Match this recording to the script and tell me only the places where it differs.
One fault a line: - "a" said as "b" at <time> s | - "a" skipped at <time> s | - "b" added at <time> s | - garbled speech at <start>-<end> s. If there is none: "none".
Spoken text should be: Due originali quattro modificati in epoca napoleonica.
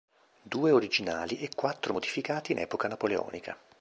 - "e" added at 1.4 s